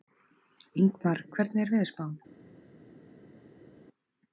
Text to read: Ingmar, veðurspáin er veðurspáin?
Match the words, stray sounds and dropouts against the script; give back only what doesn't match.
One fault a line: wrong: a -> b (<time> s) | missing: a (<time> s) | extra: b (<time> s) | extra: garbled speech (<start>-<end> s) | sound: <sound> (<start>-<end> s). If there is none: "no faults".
wrong: veðurspáin -> hvernig (1.4 s)